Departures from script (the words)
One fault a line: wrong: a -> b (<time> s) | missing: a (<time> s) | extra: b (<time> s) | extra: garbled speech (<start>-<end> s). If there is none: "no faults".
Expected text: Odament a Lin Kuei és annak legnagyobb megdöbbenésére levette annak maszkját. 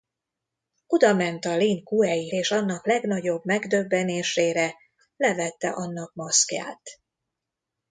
no faults